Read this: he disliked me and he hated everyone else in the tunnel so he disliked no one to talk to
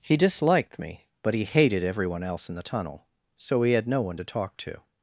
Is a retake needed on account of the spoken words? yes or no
yes